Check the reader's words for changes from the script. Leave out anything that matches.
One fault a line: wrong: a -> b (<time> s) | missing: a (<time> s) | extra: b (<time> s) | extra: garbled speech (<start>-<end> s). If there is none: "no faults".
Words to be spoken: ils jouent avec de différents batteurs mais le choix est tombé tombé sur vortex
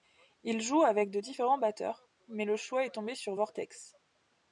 missing: tombé (3.1 s)